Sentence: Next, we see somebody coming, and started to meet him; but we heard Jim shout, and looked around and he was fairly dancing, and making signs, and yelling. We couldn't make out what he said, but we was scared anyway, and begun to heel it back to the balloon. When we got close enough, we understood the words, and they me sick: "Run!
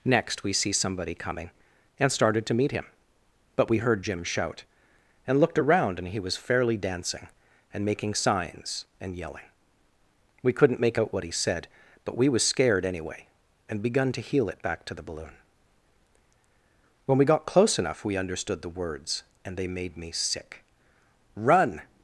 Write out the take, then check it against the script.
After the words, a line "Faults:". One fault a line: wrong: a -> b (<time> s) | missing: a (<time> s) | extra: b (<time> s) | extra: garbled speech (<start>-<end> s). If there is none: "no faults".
Next, we see somebody coming, and started to meet him; but we heard Jim shout, and looked around and he was fairly dancing, and making signs, and yelling. We couldn't make out what he said, but we was scared anyway, and begun to heel it back to the balloon. When we got close enough, we understood the words, and they made me sick: "Run!
Faults:
extra: made (19.7 s)